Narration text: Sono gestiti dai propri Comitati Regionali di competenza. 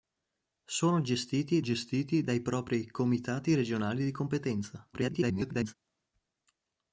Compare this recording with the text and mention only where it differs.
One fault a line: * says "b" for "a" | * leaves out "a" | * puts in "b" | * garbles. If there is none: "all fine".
* puts in "gestiti"
* garbles